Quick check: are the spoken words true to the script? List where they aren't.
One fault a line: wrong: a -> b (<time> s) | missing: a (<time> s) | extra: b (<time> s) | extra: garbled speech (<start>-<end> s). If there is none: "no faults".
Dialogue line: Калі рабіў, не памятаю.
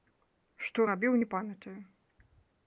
wrong: Калі -> Што (0.7 s)